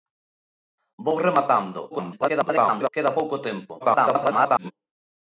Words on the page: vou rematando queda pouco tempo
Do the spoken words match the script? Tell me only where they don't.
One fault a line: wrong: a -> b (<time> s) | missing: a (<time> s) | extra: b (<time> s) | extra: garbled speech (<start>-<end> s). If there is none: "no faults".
extra: garbled speech (1.9-2.9 s)
extra: garbled speech (3.8-4.7 s)